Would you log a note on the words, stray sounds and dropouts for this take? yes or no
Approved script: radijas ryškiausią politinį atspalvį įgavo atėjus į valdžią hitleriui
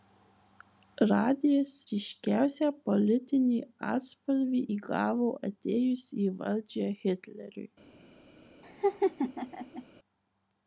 yes